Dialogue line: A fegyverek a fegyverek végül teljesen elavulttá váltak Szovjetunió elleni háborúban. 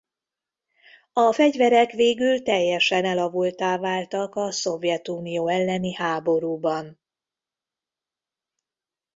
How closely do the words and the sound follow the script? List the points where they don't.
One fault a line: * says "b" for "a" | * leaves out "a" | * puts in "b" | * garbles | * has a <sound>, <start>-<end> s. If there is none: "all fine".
* leaves out "a fegyverek"
* puts in "a"